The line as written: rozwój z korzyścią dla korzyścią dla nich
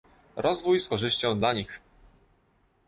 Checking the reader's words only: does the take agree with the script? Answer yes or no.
no